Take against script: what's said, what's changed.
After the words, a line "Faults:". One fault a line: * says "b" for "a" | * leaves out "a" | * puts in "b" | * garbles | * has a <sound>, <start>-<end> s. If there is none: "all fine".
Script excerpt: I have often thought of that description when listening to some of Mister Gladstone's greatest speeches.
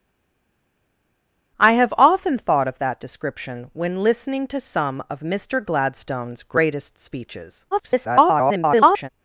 I have often thought of that description when listening to some of Mister Gladstone's greatest speeches. [garbled]
Faults:
* garbles